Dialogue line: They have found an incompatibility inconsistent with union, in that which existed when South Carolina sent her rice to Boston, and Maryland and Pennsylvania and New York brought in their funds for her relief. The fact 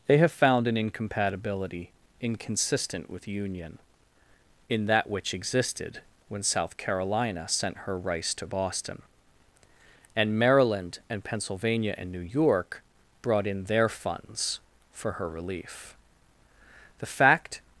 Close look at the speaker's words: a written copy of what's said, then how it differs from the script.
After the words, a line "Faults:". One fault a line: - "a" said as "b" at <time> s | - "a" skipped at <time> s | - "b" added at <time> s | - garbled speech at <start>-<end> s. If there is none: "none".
They have found an incompatibility inconsistent with union, in that which existed when South Carolina sent her rice to Boston, and Maryland and Pennsylvania and New York brought in their funds for her relief. The fact
Faults:
none